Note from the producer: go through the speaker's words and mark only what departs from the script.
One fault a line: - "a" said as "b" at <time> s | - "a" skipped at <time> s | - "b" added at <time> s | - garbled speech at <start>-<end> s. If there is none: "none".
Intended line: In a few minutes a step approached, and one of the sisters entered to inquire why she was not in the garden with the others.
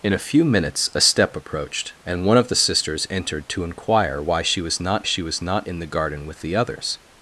- "she was not" added at 5.0 s